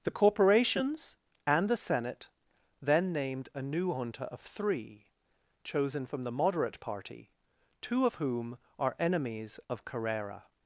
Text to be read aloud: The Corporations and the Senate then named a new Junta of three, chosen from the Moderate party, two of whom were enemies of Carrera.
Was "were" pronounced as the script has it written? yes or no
no